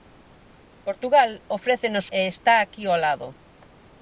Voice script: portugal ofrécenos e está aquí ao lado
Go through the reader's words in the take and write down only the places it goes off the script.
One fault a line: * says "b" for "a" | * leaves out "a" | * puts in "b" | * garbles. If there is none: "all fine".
all fine